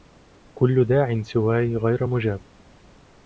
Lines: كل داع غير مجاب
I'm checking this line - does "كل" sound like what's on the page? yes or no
yes